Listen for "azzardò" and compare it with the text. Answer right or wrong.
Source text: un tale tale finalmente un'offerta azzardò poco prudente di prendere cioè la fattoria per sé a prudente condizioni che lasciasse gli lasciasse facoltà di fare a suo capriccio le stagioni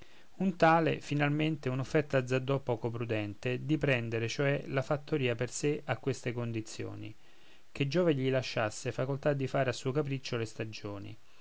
right